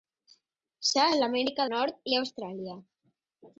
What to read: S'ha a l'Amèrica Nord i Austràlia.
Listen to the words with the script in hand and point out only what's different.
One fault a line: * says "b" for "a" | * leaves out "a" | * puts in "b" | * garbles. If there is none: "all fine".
all fine